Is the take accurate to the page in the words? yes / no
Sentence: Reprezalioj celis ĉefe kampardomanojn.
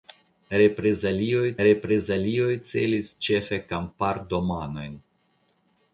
no